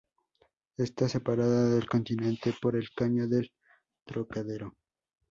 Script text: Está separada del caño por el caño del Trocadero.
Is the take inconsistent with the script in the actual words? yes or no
yes